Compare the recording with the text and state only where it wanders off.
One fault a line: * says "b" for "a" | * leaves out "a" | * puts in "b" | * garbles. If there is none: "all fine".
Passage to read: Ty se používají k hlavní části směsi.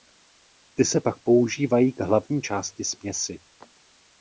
* puts in "pak"